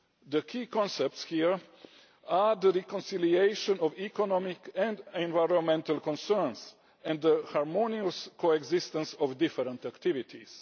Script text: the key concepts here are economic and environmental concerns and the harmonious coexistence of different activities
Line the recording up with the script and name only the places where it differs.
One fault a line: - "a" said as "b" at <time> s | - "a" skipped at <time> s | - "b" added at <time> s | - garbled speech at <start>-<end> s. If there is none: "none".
- "the reconciliation of" added at 2.5 s